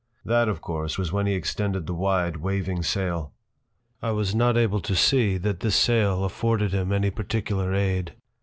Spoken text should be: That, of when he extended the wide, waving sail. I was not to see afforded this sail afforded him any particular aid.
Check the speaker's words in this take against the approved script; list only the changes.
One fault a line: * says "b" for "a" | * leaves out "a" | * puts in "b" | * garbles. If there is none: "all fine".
* puts in "course was"
* puts in "able"
* says "that" for "afforded"